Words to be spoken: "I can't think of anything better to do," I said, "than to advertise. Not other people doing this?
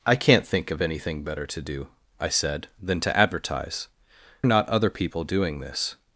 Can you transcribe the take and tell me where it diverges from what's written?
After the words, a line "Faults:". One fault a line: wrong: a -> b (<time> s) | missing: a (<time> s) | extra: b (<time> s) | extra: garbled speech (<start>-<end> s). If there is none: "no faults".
"I can't think of anything better to do," I said, "than to advertise. Not other people doing this?
Faults:
no faults